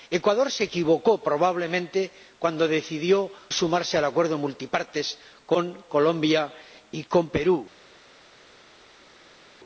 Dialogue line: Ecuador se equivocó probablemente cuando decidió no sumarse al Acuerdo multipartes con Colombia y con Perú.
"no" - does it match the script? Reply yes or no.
no